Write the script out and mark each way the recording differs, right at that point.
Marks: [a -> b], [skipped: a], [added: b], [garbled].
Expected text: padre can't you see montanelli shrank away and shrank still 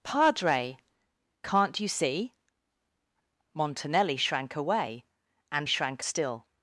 padre can't you see montanelli shrank away and shrank still